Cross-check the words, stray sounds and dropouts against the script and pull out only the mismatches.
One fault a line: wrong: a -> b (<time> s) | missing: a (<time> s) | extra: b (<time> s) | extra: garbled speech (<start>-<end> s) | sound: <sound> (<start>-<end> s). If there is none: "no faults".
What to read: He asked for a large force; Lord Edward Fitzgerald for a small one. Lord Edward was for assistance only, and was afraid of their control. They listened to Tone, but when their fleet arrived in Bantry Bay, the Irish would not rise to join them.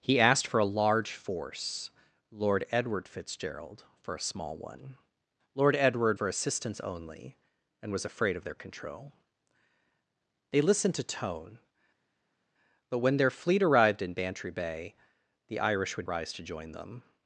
missing: was (6.2 s)
missing: not (16.1 s)